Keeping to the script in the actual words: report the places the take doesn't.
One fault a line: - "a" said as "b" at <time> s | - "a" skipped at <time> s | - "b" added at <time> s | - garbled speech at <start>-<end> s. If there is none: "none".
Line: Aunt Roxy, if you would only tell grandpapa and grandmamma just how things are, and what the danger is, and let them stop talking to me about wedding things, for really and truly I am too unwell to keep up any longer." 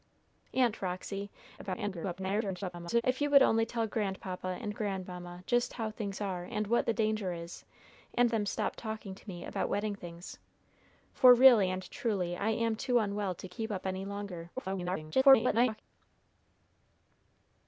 - garbled speech at 1.6-3.0 s
- "let" skipped at 8.3 s
- garbled speech at 14.6-15.8 s